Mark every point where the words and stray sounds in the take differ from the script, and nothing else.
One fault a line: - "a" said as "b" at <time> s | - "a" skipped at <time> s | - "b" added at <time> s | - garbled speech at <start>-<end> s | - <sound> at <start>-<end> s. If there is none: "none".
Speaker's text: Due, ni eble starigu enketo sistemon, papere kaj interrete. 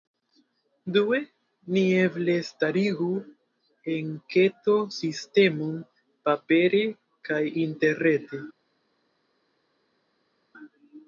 none